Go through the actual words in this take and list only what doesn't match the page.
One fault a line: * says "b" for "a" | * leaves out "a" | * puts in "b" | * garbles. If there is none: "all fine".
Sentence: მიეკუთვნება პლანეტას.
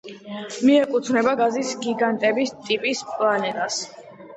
* puts in "გაზის გიგანტების ტიპის"